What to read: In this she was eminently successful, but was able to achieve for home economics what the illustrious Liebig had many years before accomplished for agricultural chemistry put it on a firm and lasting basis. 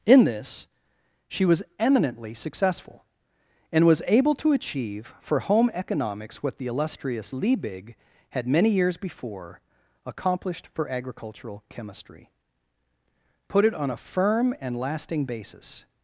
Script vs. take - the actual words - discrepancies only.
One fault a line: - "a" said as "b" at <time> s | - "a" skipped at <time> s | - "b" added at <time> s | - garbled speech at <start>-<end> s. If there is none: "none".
- "but" said as "and" at 3.7 s